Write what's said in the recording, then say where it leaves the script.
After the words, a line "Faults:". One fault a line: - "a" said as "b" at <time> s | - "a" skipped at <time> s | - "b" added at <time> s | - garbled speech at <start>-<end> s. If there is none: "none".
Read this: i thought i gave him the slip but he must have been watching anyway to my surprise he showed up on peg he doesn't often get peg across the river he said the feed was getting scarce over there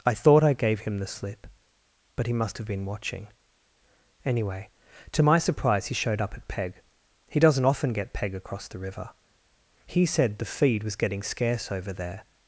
i thought i gave him the slip but he must have been watching anyway to my surprise he showed up at peg he doesn't often get peg across the river he said the feed was getting scarce over there
Faults:
- "on" said as "at" at 6.3 s